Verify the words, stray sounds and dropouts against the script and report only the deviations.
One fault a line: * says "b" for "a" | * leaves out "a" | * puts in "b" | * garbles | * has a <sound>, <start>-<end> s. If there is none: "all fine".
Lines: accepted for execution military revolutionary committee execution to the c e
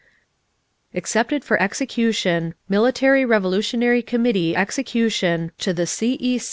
all fine